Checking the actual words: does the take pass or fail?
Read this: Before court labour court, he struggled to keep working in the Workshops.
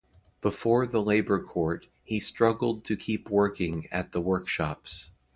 fail